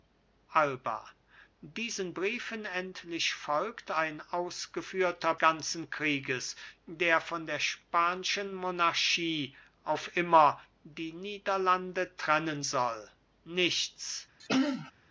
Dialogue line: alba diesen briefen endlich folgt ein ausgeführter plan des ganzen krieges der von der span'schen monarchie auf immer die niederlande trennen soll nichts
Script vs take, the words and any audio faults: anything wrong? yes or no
yes